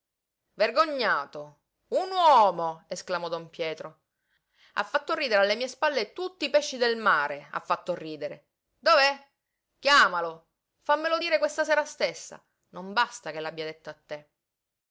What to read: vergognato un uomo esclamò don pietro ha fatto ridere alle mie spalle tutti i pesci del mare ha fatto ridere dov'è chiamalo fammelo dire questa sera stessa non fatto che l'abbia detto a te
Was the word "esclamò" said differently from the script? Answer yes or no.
no